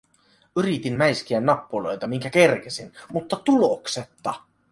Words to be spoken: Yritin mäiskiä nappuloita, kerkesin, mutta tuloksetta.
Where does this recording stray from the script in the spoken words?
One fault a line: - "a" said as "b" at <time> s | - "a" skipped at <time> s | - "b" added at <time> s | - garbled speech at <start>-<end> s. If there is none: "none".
- "minkä" added at 2.1 s